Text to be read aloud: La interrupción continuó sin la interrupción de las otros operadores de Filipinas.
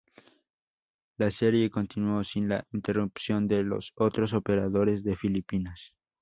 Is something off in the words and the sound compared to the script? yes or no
yes